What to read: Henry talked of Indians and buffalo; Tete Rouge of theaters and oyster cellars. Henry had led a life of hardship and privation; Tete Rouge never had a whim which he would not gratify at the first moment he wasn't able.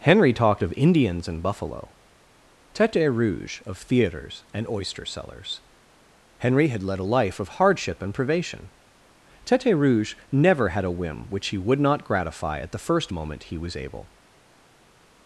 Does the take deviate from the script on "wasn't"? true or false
true